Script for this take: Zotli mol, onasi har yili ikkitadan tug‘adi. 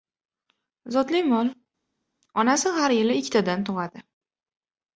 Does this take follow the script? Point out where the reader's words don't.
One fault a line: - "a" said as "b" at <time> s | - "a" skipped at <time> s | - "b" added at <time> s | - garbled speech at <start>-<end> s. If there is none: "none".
none